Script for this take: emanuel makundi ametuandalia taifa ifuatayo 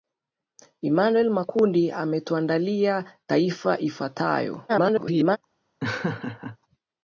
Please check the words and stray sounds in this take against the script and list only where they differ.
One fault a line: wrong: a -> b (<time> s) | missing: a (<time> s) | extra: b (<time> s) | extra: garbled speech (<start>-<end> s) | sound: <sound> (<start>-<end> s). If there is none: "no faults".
extra: garbled speech (4.7-5.4 s)
sound: laugh (5.8-6.6 s)